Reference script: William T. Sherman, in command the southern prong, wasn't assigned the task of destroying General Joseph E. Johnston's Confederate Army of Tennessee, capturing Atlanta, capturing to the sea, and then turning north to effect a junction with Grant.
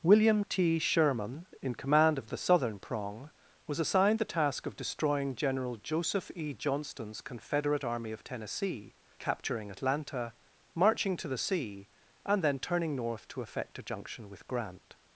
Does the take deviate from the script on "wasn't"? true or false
true